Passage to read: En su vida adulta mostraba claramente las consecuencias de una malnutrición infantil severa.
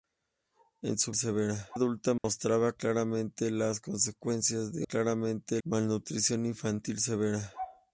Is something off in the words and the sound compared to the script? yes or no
yes